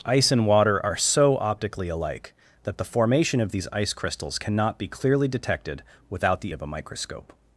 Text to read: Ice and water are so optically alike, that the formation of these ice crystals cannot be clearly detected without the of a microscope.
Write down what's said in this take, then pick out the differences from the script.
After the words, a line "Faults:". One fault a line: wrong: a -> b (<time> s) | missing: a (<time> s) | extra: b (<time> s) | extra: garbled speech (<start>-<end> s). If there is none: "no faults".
Ice and water are so optically alike, that the formation of these ice crystals cannot be clearly detected without the of a microscope.
Faults:
no faults